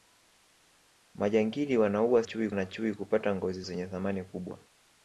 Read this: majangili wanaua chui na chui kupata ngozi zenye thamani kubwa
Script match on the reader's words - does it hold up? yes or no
yes